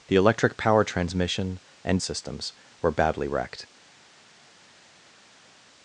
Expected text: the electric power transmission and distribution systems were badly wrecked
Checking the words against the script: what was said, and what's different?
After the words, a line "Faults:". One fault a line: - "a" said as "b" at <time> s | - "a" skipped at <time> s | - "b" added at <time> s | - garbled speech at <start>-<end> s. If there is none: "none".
the electric power transmission and systems were badly wrecked
Faults:
- "distribution" skipped at 2.0 s